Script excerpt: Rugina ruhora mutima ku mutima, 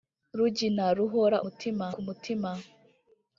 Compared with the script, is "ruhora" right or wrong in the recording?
right